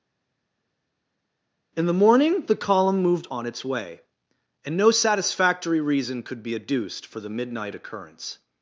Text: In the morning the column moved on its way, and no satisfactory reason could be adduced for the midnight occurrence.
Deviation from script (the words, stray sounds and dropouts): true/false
false